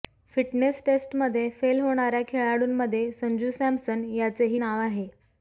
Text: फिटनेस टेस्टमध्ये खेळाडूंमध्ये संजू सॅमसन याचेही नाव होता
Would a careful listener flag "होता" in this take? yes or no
yes